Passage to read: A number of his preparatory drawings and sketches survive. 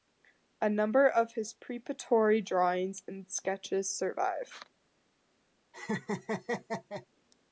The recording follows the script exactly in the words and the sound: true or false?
false